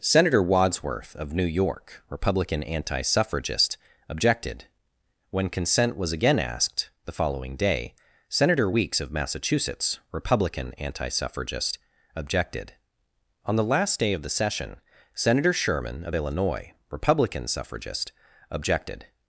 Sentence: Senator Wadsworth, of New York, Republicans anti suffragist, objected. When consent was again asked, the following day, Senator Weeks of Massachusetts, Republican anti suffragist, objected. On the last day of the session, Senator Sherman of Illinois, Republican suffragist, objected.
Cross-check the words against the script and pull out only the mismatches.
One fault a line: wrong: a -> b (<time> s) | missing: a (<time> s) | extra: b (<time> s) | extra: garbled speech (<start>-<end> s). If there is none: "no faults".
wrong: Republicans -> Republican (2.1 s)